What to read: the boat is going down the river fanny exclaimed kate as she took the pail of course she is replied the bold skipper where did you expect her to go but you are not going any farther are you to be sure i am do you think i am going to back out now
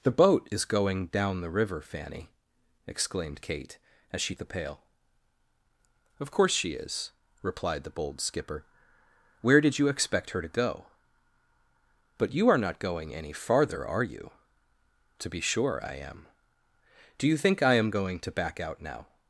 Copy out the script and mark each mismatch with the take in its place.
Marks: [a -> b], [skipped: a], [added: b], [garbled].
the boat is going down the river fanny exclaimed kate as she [skipped: took] the pail of course she is replied the bold skipper where did you expect her to go but you are not going any farther are you to be sure i am do you think i am going to back out now